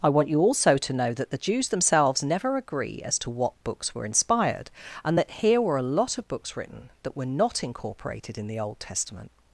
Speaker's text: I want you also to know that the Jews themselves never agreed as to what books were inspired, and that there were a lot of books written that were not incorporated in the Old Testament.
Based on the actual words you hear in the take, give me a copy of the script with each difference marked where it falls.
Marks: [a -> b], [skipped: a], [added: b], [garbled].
I want you also to know that the Jews themselves never [agreed -> agree] as to what books were inspired, and that [there -> here] were a lot of books written that were not incorporated in the Old Testament.